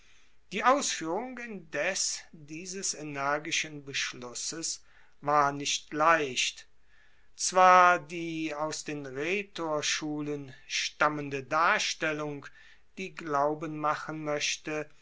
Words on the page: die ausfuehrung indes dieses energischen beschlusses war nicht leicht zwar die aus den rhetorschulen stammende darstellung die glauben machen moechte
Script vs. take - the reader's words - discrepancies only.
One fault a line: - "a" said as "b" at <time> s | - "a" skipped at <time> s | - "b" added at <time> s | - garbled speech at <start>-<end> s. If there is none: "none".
none